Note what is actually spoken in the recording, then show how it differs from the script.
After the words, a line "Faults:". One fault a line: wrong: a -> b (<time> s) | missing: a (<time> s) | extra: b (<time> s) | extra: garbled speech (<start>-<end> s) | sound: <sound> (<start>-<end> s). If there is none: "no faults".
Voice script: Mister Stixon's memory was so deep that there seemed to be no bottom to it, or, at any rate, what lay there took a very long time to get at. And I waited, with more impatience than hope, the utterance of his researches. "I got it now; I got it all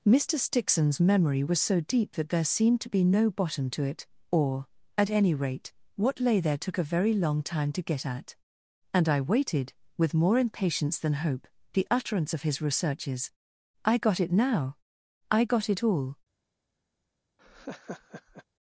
Mister Stixon's memory was so deep that there seemed to be no bottom to it, or, at any rate, what lay there took a very long time to get at. And I waited, with more impatience than hope, the utterance of his researches. "I got it now; I got it all
Faults:
sound: laugh (17.4-18.4 s)